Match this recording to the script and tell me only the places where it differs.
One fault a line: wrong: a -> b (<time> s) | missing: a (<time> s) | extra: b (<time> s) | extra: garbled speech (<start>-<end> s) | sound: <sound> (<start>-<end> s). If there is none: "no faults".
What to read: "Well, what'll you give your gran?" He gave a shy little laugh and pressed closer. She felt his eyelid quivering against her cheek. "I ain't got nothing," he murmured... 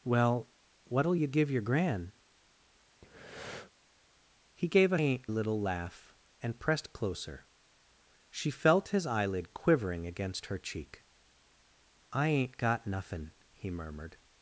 sound: breath (3.0-3.7 s)
wrong: shy -> ain't (5.0 s)